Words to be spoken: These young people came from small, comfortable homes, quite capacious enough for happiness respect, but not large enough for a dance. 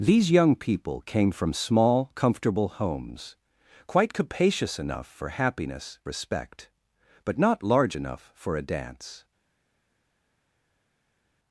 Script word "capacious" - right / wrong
right